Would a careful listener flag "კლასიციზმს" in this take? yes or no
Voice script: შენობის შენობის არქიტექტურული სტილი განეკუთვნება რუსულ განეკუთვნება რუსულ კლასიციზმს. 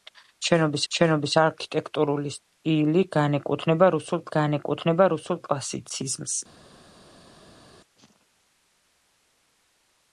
no